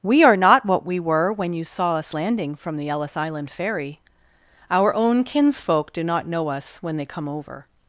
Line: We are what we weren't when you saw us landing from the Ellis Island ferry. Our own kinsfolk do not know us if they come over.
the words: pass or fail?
fail